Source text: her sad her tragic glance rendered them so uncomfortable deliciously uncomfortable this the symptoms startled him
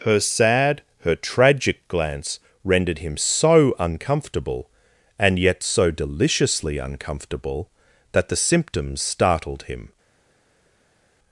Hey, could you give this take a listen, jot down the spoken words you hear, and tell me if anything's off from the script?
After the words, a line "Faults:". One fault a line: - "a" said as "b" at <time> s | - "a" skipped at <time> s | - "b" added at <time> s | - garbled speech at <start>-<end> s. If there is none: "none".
her sad her tragic glance rendered him so uncomfortable and yet so deliciously uncomfortable that the symptoms startled him
Faults:
- "them" said as "him" at 3.0 s
- "and yet so" added at 5.2 s
- "this" said as "that" at 8.1 s